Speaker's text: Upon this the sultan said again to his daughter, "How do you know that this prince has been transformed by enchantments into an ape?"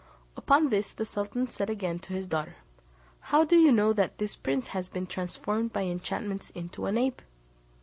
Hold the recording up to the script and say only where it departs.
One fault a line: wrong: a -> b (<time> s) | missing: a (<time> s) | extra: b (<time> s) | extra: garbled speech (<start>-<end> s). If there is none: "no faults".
no faults